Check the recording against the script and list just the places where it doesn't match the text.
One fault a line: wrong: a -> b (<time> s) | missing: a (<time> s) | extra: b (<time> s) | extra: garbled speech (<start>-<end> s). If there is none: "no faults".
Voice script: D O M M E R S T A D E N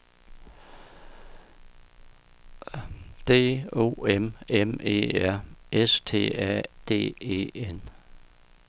no faults